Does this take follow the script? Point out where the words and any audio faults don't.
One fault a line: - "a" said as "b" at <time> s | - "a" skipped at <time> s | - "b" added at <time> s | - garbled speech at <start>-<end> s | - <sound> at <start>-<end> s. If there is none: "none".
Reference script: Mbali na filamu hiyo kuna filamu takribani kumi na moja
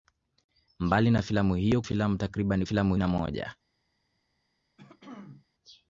- "kuna" skipped at 1.8 s
- "kumi" said as "filamu" at 2.6 s
- throat clearing at 4.8-5.5 s